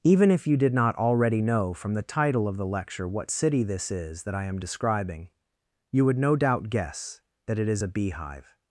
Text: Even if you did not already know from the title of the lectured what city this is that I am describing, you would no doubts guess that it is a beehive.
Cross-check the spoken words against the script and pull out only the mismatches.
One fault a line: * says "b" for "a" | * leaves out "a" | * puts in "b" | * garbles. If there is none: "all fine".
* says "lecture" for "lectured"
* says "doubt" for "doubts"